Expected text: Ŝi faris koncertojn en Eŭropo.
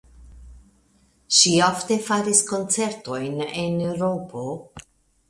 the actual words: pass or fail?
fail